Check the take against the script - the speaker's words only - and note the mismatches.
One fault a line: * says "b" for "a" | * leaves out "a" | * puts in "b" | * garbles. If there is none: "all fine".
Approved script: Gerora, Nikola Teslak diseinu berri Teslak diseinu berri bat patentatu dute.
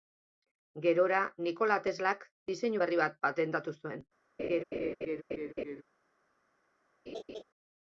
* leaves out "Teslak diseinu berri"
* says "zuen" for "dute"